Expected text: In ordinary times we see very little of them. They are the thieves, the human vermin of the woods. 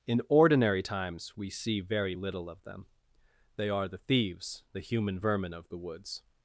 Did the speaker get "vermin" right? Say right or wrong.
right